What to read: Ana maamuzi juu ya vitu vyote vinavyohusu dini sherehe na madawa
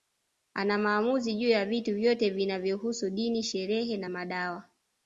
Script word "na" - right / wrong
right